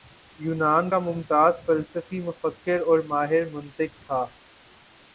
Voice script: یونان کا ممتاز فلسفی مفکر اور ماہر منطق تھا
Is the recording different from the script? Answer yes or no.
no